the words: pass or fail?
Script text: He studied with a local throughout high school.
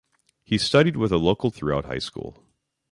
pass